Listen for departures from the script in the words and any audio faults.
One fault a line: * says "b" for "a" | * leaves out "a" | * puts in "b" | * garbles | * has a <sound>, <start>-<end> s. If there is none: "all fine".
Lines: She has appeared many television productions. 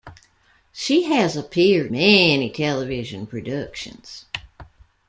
all fine